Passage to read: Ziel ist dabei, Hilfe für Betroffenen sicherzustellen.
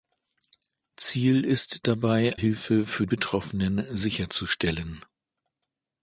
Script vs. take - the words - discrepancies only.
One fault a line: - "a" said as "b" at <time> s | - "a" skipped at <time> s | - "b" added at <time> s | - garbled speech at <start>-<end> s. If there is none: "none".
none